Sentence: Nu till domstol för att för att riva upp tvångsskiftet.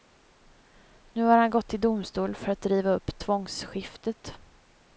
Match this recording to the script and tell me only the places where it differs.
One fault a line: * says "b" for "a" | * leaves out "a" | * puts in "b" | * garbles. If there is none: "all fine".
* puts in "har han gått"
* leaves out "för att"